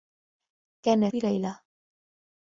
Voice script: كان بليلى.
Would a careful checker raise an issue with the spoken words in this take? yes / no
no